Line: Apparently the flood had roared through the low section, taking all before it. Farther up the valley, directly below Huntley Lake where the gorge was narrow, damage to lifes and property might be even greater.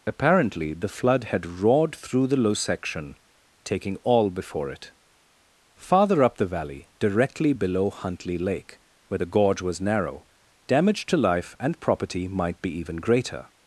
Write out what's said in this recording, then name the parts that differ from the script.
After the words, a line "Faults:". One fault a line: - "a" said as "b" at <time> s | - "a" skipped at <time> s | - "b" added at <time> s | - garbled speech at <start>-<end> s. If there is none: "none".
Apparently the flood had roared through the low section, taking all before it. Farther up the valley, directly below Huntley Lake where the gorge was narrow, damage to life and property might be even greater.
Faults:
- "lifes" said as "life" at 11.2 s